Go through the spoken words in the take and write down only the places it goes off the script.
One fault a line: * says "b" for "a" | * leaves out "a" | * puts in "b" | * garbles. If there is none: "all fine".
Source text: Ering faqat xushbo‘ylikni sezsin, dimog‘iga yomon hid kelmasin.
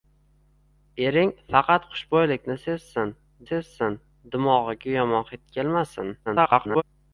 * puts in "sezsin"
* garbles